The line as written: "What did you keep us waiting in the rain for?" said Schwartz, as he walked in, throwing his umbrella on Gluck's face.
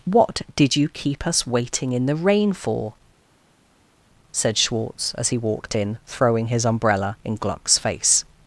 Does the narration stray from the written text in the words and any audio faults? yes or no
yes